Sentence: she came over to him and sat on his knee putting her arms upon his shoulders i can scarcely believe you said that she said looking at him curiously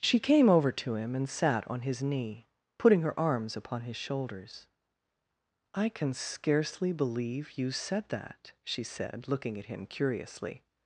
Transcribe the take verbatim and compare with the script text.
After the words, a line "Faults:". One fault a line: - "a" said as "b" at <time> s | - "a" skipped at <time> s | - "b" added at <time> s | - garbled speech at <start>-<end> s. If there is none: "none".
she came over to him and sat on his knee putting her arms upon his shoulders i can scarcely believe you said that she said looking at him curiously
Faults:
none